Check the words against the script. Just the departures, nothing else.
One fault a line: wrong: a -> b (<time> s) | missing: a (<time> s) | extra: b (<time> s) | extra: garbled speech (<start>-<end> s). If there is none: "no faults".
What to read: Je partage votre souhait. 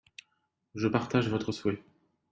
no faults